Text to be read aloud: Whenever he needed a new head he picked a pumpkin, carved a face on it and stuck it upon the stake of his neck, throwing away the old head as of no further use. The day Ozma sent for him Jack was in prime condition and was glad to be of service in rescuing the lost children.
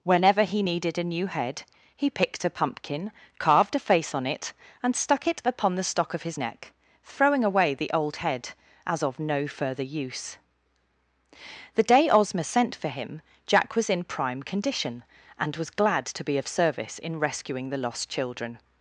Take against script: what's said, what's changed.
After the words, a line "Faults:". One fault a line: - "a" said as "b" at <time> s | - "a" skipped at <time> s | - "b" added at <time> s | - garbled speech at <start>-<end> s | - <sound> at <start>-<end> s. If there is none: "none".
Whenever he needed a new head he picked a pumpkin, carved a face on it and stuck it upon the stock of his neck, throwing away the old head as of no further use. The day Ozma sent for him Jack was in prime condition and was glad to be of service in rescuing the lost children.
Faults:
- "stake" said as "stock" at 5.8 s